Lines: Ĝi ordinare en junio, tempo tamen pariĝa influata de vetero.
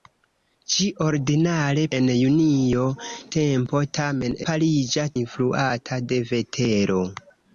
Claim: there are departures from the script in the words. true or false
false